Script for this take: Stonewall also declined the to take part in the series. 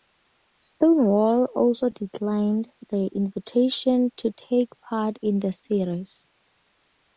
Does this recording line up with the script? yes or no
no